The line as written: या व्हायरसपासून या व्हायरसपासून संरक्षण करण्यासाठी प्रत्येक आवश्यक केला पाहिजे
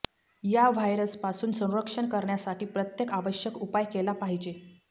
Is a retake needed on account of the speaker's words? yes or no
yes